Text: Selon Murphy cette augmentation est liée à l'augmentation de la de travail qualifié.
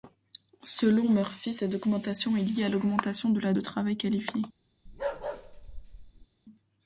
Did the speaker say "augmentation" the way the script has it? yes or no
yes